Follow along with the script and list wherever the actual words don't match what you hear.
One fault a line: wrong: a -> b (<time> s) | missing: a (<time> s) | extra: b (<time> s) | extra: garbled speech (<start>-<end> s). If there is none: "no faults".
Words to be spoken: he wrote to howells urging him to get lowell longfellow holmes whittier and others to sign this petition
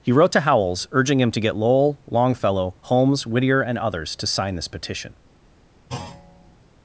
no faults